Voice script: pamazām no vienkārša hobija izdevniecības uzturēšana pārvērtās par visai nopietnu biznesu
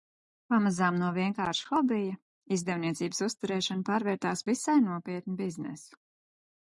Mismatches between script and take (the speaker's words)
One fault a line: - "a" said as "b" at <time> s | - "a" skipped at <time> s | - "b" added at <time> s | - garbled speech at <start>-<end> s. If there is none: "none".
- "par" skipped at 4.4 s